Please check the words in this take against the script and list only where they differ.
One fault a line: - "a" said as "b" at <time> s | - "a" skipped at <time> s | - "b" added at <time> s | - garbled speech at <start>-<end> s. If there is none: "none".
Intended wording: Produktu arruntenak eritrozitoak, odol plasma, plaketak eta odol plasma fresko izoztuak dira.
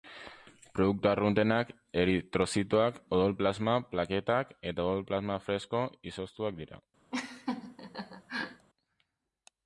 none